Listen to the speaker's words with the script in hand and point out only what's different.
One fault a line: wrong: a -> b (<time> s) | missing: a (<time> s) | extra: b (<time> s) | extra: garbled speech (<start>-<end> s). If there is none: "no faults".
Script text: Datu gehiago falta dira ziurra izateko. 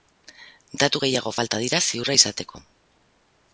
no faults